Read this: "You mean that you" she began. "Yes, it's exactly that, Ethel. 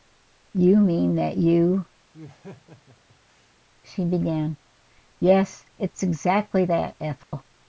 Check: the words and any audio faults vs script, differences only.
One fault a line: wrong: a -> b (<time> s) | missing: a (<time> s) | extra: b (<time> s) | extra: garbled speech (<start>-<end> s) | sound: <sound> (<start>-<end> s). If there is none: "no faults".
sound: laugh (2.1-3.6 s)
sound: dropout (7.2-7.3 s)